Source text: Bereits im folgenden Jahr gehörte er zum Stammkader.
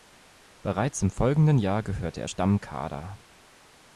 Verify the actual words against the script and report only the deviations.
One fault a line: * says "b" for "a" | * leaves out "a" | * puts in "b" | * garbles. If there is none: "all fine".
* leaves out "zum"